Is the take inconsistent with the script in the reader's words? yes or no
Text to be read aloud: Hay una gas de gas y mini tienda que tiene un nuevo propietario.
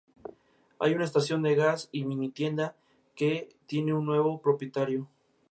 yes